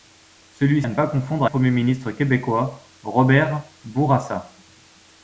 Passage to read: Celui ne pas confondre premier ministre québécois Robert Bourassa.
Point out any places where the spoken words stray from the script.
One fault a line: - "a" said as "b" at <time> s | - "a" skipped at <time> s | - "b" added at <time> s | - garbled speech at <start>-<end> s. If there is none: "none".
none